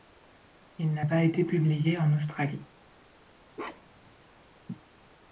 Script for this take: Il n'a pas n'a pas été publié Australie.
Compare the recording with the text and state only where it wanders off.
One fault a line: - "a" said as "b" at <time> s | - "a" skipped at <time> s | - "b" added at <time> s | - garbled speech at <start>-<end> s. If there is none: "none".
- "n'a pas" skipped at 1.2 s
- "en" added at 2.0 s